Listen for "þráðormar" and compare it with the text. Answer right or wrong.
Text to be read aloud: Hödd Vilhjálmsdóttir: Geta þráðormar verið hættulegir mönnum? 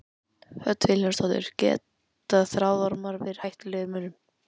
right